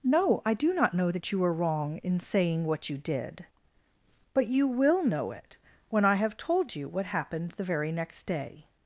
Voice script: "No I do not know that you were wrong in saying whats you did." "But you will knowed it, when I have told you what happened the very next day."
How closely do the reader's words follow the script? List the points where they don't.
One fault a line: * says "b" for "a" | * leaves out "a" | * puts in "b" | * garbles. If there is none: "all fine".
* says "what" for "whats"
* says "know" for "knowed"